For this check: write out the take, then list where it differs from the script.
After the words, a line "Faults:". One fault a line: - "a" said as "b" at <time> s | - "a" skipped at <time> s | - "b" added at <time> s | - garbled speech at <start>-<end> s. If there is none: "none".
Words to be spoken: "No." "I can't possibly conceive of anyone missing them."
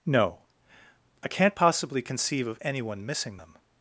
"No." "I can't possibly conceive of anyone missing them."
Faults:
none